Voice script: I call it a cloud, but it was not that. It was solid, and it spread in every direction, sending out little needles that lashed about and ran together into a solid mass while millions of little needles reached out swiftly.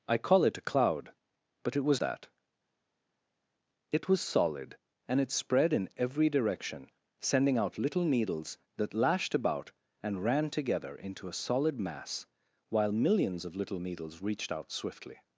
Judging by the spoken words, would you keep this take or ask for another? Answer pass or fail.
fail